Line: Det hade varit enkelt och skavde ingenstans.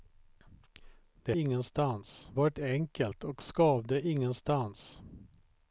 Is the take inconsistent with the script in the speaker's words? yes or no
yes